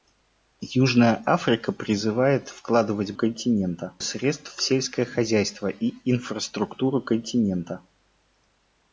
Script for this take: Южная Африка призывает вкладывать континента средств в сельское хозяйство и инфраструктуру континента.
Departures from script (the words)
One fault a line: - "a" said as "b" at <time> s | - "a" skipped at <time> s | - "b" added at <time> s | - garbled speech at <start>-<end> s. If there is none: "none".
none